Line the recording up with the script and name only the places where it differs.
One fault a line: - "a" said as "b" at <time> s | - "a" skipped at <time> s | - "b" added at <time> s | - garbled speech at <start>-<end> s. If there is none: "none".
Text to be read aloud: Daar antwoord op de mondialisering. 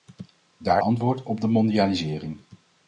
none